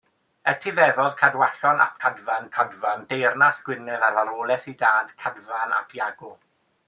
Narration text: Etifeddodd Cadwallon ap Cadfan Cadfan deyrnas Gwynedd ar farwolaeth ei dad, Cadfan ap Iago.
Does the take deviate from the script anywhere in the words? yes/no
no